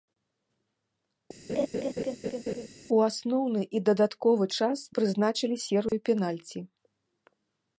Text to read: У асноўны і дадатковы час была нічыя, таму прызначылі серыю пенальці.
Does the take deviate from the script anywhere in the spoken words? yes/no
yes